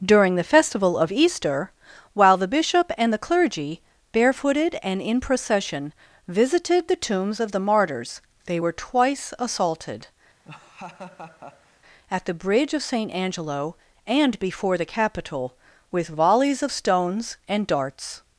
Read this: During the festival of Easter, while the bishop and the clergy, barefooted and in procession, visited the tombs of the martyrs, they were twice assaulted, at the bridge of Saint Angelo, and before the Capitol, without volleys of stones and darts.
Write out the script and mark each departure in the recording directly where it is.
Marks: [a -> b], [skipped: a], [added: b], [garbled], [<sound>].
During the festival of Easter, while the bishop and the clergy, barefooted and in procession, visited the tombs of the martyrs, they were twice assaulted, [laugh] at the bridge of Saint Angelo, and before the Capitol, [without -> with] volleys of stones and darts.